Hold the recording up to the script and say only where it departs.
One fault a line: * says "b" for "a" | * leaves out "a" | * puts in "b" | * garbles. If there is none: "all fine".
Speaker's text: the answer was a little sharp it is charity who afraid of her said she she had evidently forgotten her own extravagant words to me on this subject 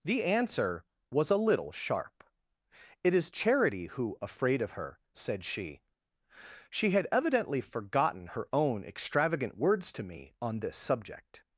all fine